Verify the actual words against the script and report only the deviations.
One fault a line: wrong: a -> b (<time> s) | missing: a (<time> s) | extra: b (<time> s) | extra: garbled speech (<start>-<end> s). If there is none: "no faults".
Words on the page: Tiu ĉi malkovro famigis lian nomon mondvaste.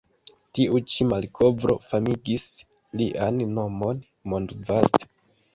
no faults